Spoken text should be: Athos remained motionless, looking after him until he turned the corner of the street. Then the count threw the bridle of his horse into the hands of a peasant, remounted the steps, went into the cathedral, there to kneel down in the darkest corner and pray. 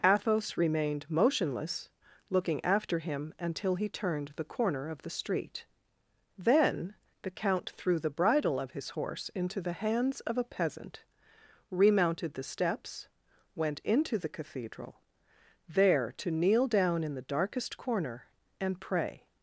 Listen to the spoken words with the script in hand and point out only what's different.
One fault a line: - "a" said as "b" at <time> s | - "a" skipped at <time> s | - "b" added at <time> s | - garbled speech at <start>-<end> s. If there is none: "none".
none